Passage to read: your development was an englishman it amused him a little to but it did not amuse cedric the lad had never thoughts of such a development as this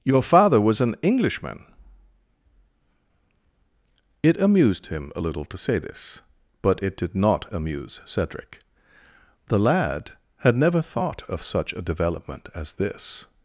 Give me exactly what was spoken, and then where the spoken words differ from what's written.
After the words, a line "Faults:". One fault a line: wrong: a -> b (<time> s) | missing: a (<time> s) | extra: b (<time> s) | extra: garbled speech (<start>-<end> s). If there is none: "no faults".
your father was an englishman it amused him a little to say this but it did not amuse cedric the lad had never thought of such a development as this
Faults:
wrong: development -> father (0.2 s)
extra: say this (5.6 s)
wrong: thoughts -> thought (10.8 s)